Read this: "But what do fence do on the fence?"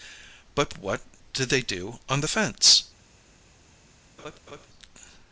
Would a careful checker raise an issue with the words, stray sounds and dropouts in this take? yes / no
yes